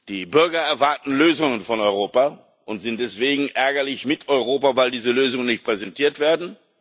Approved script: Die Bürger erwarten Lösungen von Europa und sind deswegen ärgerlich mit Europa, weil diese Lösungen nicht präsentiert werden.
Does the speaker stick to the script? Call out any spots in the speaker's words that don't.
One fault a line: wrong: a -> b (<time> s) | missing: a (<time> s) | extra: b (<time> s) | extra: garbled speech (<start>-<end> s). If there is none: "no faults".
no faults